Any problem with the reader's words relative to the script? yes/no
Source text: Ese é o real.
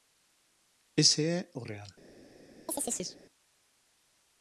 no